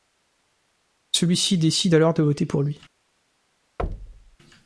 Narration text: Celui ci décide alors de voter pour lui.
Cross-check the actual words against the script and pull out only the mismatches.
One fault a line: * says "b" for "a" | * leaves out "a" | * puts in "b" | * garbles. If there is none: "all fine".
all fine